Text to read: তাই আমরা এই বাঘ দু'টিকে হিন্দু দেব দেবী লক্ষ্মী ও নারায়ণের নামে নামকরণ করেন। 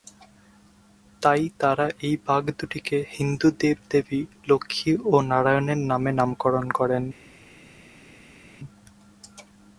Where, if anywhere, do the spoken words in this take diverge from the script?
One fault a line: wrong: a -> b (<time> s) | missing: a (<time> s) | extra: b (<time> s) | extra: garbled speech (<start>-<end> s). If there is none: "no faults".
wrong: আমরা -> তারা (1.6 s)